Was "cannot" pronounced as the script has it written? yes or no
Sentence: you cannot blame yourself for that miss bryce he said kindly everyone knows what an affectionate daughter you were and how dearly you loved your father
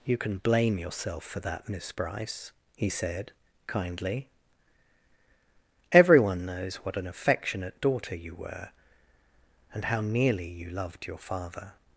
no